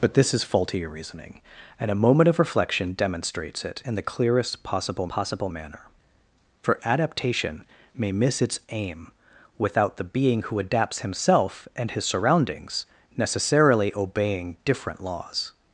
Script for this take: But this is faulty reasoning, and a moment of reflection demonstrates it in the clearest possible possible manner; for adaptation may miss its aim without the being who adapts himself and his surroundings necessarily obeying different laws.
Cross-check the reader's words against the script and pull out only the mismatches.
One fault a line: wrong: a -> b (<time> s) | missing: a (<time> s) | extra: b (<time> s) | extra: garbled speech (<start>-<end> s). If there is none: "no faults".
no faults